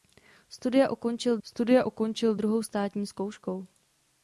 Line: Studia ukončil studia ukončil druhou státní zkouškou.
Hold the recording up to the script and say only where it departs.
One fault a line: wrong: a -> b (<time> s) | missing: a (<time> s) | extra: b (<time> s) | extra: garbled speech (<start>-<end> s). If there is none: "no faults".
no faults